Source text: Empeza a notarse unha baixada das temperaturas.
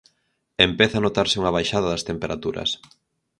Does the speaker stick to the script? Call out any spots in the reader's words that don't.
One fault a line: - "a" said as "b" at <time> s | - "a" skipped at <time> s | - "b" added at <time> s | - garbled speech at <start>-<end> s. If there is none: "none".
none